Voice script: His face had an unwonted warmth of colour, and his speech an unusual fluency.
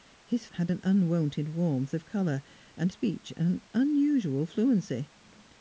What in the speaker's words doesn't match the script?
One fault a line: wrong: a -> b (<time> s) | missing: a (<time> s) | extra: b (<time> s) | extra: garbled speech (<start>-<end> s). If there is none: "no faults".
missing: face (0.5 s)
missing: his (2.9 s)